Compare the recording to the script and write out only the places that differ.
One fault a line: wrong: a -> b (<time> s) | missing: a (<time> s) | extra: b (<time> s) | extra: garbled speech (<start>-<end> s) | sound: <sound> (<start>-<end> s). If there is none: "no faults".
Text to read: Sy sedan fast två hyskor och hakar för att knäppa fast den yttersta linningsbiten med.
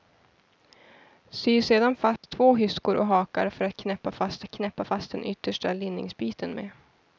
sound: dropout (2.2-2.2 s)
extra: att knäppa fast (4.4 s)